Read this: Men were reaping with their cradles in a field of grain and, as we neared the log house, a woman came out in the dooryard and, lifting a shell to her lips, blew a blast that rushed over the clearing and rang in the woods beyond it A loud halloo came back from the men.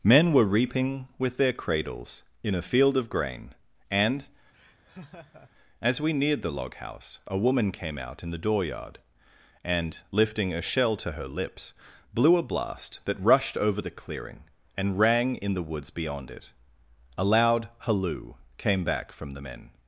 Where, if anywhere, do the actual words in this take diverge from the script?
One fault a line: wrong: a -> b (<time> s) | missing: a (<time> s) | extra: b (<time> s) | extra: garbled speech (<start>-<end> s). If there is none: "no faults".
no faults